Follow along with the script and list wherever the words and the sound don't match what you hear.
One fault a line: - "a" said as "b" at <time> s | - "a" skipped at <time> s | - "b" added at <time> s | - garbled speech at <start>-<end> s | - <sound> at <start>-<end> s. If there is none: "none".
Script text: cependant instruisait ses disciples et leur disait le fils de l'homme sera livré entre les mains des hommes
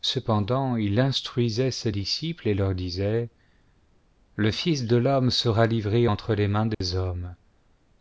- "il" added at 0.8 s
- dropout at 6.7-6.8 s